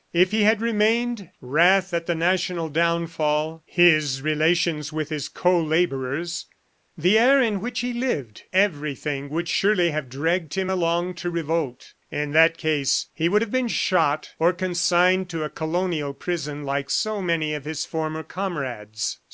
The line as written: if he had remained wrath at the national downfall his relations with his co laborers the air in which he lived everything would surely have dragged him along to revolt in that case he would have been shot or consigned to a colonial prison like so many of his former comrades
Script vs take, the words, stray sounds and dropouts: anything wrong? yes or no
no